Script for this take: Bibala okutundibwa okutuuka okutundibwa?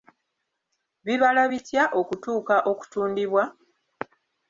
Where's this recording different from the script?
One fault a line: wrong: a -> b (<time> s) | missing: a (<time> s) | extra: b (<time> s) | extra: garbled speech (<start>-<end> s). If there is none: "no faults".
wrong: okutundibwa -> bitya (1.5 s)